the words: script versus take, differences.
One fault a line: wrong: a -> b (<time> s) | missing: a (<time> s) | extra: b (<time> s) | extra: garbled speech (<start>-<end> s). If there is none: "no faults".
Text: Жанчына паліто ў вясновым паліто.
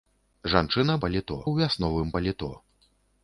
no faults